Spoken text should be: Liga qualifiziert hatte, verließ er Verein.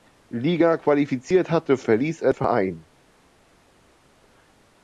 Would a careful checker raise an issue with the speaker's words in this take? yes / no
no